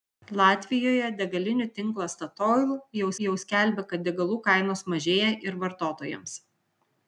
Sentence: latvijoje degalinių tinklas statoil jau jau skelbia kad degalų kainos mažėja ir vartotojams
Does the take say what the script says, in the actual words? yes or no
yes